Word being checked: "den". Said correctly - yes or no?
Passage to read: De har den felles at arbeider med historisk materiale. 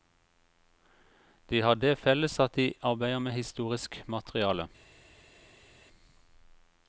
no